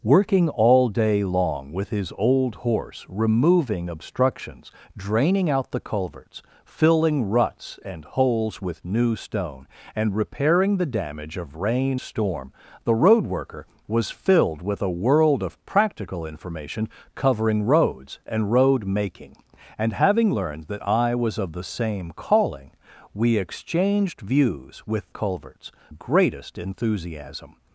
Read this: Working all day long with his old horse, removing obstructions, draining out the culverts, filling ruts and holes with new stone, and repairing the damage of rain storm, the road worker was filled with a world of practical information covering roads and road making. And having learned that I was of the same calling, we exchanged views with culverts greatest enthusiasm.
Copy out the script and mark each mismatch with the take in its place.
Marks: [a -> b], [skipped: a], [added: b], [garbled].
Working all day long with his old horse, removing obstructions, draining out the culverts, filling ruts and holes with new stone, and repairing the damage of rain storm, the road worker was filled with a world of practical information covering roads and road making. And having learned that I was of the same calling, we exchanged views with culverts greatest enthusiasm.